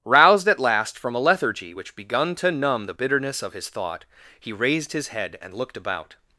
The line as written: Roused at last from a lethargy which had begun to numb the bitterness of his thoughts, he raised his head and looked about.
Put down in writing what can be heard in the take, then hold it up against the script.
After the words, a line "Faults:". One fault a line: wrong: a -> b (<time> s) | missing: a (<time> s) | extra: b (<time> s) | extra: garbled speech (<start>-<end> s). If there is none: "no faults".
Roused at last from a lethargy which begun to numb the bitterness of his thought, he raised his head and looked about.
Faults:
missing: had (2.0 s)
wrong: thoughts -> thought (3.7 s)